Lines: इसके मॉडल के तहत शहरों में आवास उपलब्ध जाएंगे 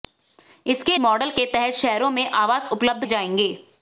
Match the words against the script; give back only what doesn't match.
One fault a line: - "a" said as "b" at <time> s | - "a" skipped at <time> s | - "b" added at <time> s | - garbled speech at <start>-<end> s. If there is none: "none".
none